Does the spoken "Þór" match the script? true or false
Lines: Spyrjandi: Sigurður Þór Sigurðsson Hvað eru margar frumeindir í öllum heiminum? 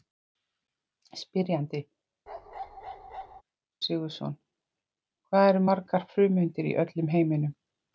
false